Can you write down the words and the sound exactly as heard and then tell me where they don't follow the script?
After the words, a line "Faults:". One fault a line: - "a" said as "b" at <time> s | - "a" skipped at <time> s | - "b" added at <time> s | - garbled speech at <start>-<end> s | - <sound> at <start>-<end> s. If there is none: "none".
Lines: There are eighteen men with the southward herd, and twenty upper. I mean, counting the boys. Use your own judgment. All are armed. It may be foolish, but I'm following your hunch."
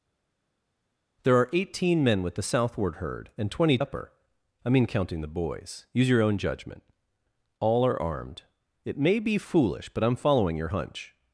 There are eighteen men with the southward herd, and twenty upper. I mean, counting the boys. Use your own judgment. All are armed. It may be foolish, but I'm following your hunch."
Faults:
none